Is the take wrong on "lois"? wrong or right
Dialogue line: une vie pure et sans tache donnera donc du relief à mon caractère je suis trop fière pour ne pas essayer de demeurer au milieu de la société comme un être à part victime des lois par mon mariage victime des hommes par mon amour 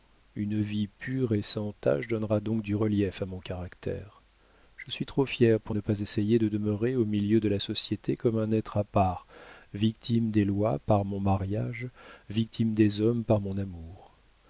right